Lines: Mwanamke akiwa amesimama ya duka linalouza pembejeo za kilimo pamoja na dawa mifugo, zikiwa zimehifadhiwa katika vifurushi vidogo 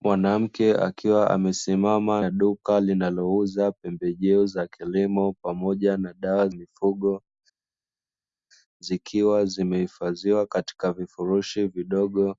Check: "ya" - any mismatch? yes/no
no